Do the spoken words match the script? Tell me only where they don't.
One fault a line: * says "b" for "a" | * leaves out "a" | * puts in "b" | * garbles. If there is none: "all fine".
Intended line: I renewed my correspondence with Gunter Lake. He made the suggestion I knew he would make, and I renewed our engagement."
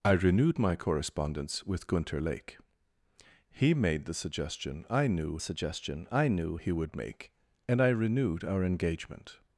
* puts in "suggestion I knew"